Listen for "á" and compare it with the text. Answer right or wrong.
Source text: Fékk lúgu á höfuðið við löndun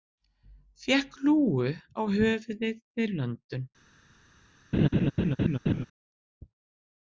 right